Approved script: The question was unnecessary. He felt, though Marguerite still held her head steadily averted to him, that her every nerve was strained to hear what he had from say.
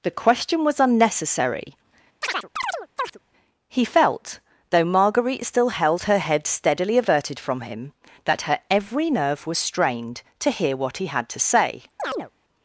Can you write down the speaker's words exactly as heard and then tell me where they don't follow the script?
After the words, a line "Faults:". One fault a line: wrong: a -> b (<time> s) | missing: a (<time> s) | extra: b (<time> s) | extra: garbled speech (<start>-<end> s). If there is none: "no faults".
The question was unnecessary. He felt, though Marguerite still held her head steadily averted from him, that her every nerve was strained to hear what he had to say.
Faults:
wrong: to -> from (7.4 s)
wrong: from -> to (11.3 s)